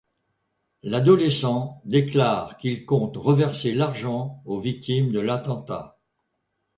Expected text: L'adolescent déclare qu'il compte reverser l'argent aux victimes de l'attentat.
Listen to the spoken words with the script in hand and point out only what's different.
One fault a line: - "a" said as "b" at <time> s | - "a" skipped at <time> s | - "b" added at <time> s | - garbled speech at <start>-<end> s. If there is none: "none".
none